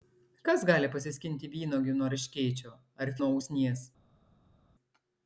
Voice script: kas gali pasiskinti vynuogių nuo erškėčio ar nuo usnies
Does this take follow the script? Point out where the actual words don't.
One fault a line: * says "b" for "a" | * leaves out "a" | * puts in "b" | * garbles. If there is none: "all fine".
all fine